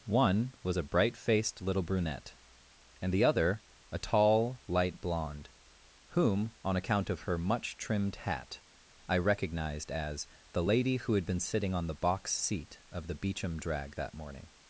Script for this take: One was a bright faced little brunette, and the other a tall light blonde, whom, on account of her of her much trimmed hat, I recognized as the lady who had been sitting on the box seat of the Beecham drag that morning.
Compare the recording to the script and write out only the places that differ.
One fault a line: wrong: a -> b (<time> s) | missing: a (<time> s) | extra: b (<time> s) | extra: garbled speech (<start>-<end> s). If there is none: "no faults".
missing: of her (7.4 s)